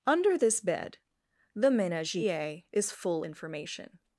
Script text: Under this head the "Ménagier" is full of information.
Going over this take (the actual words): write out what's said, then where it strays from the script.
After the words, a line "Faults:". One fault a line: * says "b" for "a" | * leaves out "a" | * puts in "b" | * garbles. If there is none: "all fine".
Under this bed the "Ménagier" is full information.
Faults:
* says "bed" for "head"
* leaves out "of"